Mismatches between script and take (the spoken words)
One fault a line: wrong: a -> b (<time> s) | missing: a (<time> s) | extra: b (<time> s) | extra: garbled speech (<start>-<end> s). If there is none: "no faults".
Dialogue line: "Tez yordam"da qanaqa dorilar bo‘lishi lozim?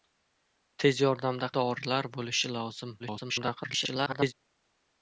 missing: qanaqa (1.5 s)
extra: garbled speech (3.0-4.3 s)